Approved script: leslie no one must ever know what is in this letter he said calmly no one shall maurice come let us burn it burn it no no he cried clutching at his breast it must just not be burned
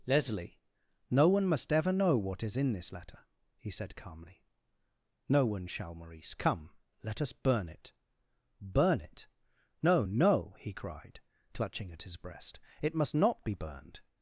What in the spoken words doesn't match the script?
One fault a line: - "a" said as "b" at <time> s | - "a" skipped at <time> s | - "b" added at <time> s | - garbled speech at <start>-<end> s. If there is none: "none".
- "just" skipped at 13.1 s